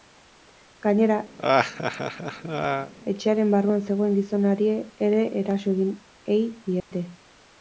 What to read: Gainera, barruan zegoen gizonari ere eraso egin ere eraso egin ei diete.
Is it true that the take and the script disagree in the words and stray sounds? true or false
true